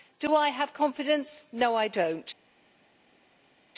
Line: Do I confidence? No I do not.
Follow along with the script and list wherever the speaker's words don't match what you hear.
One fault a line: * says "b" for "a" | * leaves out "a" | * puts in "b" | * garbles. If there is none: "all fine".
* puts in "have"